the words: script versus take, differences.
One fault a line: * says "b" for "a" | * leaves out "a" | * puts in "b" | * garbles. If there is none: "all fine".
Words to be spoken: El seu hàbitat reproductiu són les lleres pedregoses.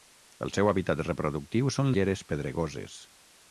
* leaves out "les"